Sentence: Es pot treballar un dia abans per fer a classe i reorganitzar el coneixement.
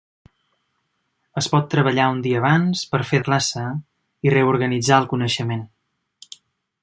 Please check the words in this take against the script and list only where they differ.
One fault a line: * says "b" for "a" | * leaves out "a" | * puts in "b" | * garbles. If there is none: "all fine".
all fine